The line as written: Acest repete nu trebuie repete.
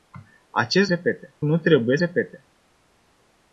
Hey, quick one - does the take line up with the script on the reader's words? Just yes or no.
yes